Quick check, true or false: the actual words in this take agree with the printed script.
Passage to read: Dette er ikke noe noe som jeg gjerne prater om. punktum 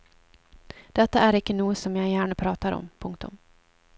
false